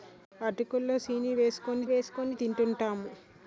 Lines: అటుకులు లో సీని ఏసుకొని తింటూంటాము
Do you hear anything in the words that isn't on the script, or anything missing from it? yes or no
yes